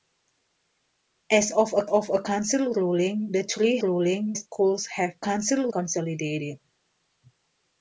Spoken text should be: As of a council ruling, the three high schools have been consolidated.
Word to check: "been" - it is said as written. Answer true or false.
false